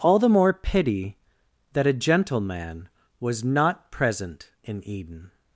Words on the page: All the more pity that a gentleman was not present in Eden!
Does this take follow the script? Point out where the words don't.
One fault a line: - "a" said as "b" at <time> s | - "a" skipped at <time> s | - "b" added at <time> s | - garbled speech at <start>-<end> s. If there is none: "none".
none